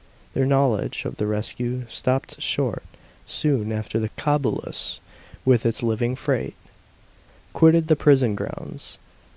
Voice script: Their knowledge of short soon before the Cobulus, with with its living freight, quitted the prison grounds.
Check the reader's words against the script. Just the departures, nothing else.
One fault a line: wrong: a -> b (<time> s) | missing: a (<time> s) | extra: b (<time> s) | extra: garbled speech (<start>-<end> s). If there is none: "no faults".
extra: the rescue stopped (1.2 s)
wrong: before -> after (3.7 s)
missing: with (5.6 s)